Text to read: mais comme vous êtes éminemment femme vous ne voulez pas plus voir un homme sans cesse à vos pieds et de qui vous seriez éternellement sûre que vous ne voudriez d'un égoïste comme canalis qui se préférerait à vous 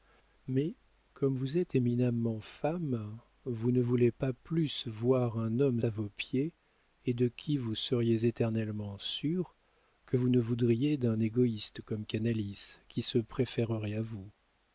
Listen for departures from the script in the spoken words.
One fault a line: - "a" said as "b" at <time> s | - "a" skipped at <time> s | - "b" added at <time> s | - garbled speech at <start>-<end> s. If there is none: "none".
- "sans cesse" skipped at 5.8 s